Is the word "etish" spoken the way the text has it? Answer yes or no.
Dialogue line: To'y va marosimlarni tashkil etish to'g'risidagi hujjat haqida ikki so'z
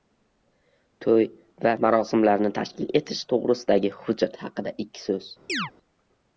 yes